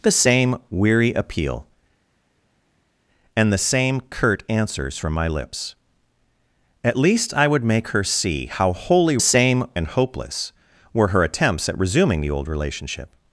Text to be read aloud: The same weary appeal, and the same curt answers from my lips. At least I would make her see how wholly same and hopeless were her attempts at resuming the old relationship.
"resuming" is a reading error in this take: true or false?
false